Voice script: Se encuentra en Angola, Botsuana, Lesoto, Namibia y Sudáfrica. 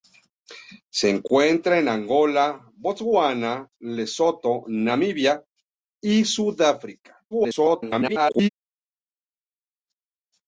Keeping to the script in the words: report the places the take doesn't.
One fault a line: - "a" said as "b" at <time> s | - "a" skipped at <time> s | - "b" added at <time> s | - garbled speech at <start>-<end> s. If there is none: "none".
- garbled speech at 7.3-8.5 s